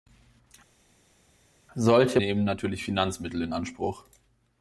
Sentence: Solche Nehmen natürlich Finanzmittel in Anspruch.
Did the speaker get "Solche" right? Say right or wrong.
right